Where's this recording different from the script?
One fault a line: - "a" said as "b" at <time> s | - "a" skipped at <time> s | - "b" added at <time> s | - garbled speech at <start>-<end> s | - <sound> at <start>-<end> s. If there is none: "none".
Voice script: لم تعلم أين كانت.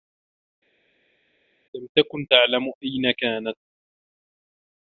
- "تكن" added at 2.0 s